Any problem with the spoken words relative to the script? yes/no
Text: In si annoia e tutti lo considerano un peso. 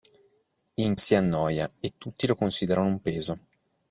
no